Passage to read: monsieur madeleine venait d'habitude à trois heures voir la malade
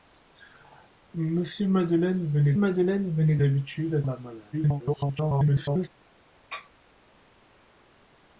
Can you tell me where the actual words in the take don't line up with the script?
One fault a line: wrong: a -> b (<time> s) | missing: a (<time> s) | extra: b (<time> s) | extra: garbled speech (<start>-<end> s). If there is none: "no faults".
extra: madeleine venait (2.5 s)
missing: trois heures voir (4.0 s)
extra: garbled speech (4.5-5.9 s)